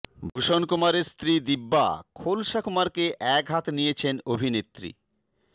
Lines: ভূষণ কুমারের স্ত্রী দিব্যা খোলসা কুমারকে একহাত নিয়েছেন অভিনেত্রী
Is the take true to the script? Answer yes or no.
yes